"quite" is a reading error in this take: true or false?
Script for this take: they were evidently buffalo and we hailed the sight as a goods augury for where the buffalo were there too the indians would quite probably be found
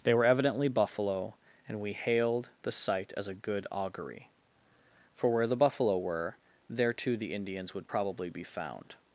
true